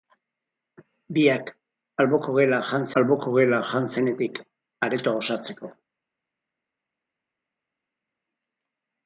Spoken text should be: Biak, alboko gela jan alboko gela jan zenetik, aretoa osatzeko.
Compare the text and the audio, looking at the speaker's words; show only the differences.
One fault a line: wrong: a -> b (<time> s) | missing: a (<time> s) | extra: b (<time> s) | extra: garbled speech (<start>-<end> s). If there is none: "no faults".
no faults